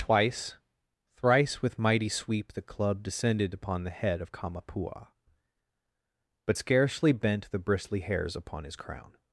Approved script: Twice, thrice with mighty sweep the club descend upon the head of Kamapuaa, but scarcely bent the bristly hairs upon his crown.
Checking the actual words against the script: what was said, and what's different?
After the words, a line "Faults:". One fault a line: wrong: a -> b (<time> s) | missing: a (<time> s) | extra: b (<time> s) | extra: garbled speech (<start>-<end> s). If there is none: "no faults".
Twice, thrice with mighty sweep the club descended upon the head of Kamapuaa, but scarcely bent the bristly hairs upon his crown.
Faults:
wrong: descend -> descended (3.0 s)